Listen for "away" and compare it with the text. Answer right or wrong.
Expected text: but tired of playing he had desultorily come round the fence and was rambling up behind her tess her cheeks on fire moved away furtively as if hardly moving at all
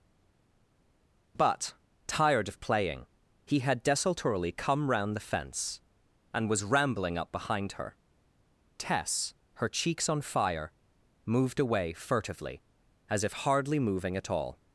right